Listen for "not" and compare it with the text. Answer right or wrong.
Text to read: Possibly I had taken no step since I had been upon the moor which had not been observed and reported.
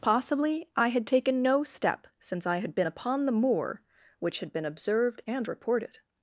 wrong